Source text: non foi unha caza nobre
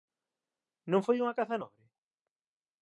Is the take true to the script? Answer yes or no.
yes